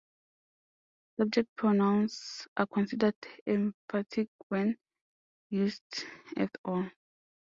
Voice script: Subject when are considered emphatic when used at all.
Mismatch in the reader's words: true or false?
true